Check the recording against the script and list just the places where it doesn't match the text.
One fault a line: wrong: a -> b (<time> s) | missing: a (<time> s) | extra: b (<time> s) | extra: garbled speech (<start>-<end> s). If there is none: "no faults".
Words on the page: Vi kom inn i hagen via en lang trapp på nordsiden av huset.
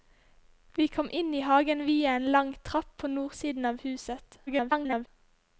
extra: garbled speech (4.5-5.1 s)